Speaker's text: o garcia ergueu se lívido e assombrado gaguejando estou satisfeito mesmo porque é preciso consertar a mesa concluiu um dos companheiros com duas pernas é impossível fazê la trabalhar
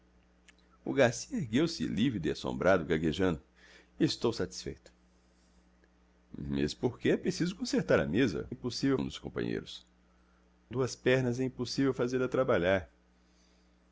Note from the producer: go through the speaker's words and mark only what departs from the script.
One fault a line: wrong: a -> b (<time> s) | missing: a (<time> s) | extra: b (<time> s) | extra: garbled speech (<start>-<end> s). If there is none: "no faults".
wrong: concluiu -> impossível (8.5 s)
missing: com (9.9 s)